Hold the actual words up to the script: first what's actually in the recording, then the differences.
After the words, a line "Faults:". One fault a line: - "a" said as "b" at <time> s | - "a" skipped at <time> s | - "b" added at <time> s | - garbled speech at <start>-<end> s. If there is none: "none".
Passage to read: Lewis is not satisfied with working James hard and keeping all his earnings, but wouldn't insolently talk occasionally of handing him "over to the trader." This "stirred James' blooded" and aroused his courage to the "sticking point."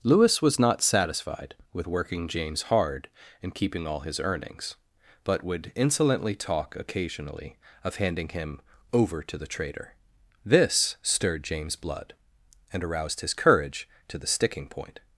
Lewis was not satisfied with working James hard and keeping all his earnings, but would insolently talk occasionally of handing him "over to the trader." This "stirred James' blood" and aroused his courage to the "sticking point."
Faults:
- "is" said as "was" at 0.4 s
- "wouldn't" said as "would" at 5.4 s
- "blooded" said as "blood" at 11.7 s